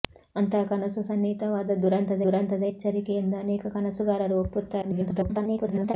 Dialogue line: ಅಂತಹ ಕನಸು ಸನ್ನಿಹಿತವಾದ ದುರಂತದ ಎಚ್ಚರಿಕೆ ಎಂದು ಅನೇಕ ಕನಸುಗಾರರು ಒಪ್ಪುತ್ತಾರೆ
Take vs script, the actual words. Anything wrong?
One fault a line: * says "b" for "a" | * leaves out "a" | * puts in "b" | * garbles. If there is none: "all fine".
* puts in "ದುರಂತದ"
* garbles